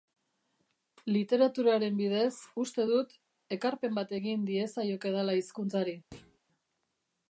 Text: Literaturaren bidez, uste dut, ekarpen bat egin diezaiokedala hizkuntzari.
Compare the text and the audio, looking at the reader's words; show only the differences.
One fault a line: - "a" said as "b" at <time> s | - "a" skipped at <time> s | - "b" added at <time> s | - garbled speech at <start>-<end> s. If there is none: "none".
none